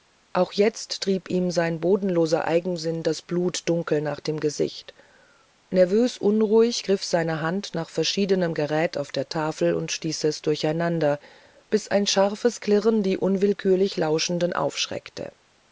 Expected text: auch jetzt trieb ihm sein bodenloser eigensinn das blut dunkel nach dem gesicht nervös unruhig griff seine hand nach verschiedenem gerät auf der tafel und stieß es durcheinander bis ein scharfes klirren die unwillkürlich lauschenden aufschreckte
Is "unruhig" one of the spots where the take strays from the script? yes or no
no